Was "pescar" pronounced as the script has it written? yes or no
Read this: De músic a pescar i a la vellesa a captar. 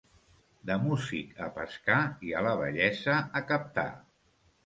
yes